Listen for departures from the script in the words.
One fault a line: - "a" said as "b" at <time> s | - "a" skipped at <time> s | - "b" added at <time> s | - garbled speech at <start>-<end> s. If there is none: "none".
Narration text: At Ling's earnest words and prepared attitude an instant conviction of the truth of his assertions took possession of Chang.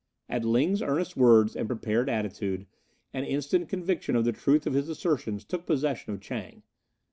none